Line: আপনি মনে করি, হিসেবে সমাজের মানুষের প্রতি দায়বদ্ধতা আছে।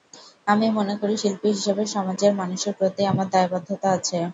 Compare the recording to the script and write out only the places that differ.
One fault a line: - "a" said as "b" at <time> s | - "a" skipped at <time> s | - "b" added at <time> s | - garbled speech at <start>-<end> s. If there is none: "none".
- "আপনি" said as "আমি" at 0.5 s
- "শিল্পী" added at 1.2 s
- "আমার" added at 3.1 s